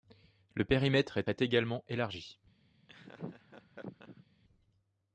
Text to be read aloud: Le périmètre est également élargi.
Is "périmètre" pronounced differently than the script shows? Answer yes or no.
no